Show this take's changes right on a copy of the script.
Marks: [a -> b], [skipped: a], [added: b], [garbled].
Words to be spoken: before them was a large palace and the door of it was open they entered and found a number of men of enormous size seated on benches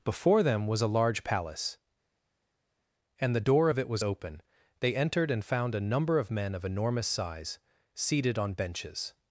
before them was a large palace and the door of it was open they entered and found a number of men of enormous size seated on benches